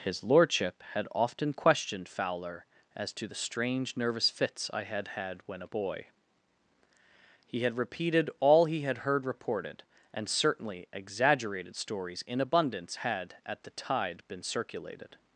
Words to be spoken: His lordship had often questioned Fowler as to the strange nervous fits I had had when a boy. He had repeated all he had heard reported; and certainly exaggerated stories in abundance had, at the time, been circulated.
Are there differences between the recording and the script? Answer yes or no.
yes